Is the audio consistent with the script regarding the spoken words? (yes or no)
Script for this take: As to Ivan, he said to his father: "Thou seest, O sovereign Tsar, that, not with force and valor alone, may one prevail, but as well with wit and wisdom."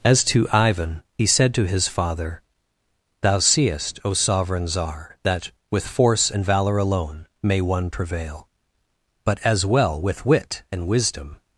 no